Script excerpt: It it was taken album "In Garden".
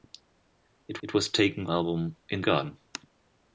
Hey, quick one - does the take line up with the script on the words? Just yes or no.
yes